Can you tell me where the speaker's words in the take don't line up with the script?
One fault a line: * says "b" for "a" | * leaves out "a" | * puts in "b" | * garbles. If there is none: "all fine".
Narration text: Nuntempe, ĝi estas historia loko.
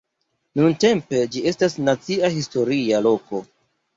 * puts in "nacia"